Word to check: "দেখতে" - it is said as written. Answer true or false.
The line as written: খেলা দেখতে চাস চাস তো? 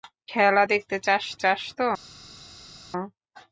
true